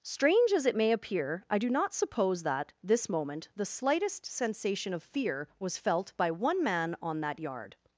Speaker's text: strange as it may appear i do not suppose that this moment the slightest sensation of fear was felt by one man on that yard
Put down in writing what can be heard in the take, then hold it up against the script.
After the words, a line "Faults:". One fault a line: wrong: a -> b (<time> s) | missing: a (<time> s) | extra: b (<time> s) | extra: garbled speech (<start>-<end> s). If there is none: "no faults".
strange as it may appear i do not suppose that this moment the slightest sensation of fear was felt by one man on that yard
Faults:
no faults